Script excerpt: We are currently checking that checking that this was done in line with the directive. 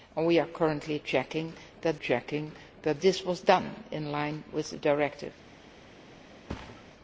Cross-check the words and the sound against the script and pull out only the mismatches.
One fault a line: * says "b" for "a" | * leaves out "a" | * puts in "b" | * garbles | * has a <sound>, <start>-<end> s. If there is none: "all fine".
* has a thud, 6.5-6.9 s